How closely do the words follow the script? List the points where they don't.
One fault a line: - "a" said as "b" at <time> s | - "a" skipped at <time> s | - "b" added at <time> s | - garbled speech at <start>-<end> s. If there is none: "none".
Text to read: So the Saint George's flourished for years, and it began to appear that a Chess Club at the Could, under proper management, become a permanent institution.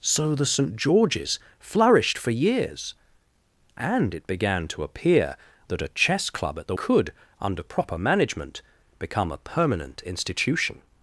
none